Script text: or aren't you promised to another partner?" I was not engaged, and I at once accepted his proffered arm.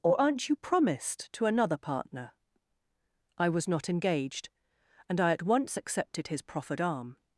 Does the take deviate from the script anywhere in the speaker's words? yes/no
no